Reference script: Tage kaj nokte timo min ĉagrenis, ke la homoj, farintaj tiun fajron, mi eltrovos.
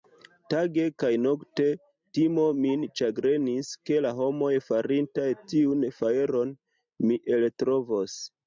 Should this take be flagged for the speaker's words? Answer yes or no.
no